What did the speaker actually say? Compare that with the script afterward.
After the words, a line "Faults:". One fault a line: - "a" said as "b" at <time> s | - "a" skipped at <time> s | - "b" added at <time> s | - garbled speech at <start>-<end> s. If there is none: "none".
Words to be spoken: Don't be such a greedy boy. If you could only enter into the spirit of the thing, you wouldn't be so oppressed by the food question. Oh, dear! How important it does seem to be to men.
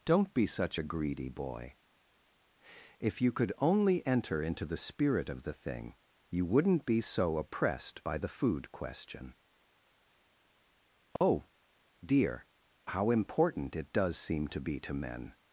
Don't be such a greedy boy. If you could only enter into the spirit of the thing, you wouldn't be so oppressed by the food question. Oh, dear! How important it does seem to be to men.
Faults:
none